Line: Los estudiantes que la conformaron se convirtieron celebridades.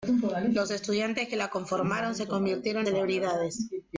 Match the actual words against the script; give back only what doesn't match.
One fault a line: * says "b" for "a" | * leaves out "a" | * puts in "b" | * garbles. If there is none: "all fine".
all fine